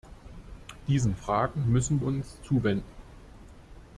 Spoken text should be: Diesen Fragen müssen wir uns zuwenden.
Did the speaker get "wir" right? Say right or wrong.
wrong